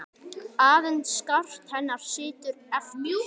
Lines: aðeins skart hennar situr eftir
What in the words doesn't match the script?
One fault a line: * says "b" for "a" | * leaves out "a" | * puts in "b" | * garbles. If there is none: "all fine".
all fine